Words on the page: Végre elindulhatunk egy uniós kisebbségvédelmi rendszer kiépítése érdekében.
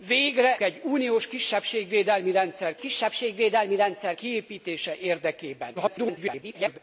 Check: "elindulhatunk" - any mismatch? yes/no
yes